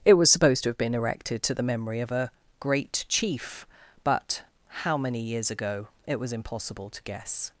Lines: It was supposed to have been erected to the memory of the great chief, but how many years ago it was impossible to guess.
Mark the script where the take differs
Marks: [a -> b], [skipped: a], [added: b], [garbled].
It was supposed to have been erected to the memory of [the -> a] great chief, but how many years ago it was impossible to guess.